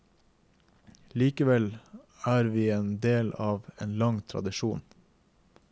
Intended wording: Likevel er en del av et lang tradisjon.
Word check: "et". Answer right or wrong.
wrong